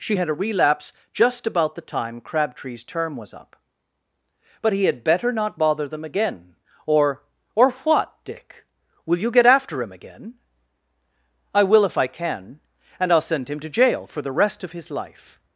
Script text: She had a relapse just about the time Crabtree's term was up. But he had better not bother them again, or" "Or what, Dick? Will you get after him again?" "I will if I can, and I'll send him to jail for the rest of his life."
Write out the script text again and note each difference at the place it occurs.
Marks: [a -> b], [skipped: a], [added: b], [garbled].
She had a relapse just about the time Crabtree's term was up. But he had better not bother them again, or" "Or what, Dick? Will you get after him again?" "I will if I can, and I'll send him to jail for the rest of his life."